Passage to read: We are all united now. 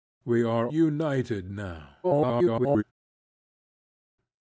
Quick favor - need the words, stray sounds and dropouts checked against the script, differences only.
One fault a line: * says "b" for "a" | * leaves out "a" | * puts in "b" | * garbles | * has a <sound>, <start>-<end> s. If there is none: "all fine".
* leaves out "all"
* garbles